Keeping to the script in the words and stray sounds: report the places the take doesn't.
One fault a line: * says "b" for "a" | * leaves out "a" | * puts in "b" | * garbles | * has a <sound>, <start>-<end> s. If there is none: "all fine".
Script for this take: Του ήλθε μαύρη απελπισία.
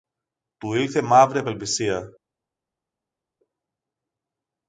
all fine